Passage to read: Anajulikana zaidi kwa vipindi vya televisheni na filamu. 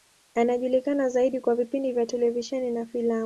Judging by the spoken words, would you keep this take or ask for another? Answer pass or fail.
pass